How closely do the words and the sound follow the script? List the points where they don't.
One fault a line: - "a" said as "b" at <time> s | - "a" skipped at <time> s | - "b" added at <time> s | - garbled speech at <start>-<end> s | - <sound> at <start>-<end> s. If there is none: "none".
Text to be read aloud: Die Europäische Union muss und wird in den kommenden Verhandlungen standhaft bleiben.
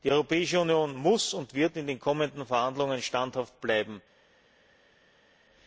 none